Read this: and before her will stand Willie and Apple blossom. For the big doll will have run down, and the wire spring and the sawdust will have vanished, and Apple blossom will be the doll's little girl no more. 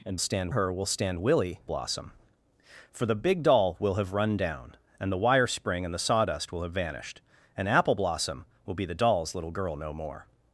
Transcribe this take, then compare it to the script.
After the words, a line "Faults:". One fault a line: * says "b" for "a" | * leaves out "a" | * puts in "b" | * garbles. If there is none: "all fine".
and stand her will stand Willie blossom. For the big doll will have run down, and the wire spring and the sawdust will have vanished, and Apple blossom will be the doll's little girl no more.
Faults:
* says "stand" for "before"
* leaves out "and Apple"